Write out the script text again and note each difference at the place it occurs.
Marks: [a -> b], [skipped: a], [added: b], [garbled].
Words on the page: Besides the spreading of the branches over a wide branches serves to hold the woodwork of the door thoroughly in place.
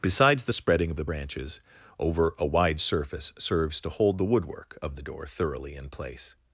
Besides the spreading of the branches over a wide [branches -> surface] serves to hold the woodwork of the door thoroughly in place.